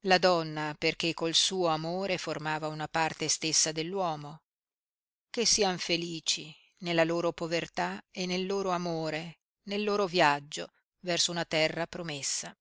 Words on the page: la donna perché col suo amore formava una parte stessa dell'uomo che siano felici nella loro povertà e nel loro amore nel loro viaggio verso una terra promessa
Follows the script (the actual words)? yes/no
yes